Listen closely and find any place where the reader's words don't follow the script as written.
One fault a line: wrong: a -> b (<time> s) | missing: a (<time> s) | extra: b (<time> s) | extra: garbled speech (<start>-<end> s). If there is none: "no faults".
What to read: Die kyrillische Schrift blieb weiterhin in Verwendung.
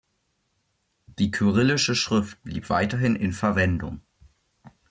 no faults